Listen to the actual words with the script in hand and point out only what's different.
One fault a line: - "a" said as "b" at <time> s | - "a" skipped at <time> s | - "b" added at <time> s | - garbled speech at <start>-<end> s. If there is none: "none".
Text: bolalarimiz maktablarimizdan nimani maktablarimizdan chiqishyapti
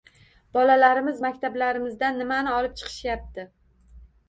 - "maktablarimizdan" said as "olib" at 2.6 s